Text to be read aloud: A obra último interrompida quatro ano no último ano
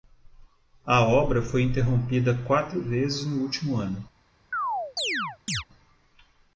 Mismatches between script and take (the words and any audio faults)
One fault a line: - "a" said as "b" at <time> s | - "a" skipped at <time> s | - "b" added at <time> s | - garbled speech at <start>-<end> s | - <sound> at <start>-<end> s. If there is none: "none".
- "último" said as "foi" at 1.4 s
- "ano" said as "vezes" at 2.8 s
- chirp at 4.5-5.6 s